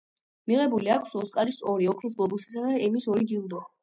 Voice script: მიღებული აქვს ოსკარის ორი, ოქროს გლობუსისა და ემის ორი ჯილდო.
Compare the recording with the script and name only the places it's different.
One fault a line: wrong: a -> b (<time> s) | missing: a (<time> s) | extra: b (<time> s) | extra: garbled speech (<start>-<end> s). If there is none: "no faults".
no faults